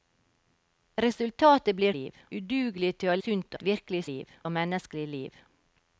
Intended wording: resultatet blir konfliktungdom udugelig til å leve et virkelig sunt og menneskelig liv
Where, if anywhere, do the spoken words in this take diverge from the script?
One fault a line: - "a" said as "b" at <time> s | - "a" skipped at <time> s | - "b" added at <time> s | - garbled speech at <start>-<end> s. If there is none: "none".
- "konfliktungdom" said as "liv" at 2.0 s
- "leve" said as "sunt" at 3.2 s
- "sunt" said as "liv" at 4.1 s